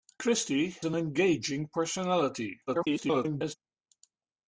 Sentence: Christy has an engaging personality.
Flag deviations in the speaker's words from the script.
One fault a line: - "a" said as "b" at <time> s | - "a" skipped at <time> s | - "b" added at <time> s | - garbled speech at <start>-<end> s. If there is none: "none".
- "has" skipped at 0.7 s
- garbled speech at 2.7-3.5 s